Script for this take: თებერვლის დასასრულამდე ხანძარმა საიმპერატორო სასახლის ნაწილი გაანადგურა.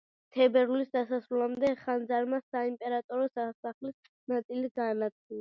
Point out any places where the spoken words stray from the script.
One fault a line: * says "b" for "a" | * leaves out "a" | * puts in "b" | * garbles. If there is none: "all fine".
all fine